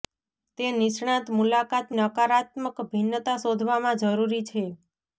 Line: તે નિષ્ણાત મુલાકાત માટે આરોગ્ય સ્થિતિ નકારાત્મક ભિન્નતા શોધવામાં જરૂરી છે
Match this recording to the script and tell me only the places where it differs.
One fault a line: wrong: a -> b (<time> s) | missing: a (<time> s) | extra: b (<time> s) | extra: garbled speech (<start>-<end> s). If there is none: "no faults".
missing: માટે આરોગ્ય સ્થિતિ (1.9 s)